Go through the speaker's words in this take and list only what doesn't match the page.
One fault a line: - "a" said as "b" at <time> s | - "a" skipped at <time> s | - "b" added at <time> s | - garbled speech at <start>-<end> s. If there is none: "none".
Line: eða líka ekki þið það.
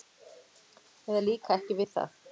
- "þið" said as "við" at 1.8 s